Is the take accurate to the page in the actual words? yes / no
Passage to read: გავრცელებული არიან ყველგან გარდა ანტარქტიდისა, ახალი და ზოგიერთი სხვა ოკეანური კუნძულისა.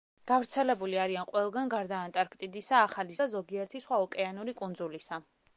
yes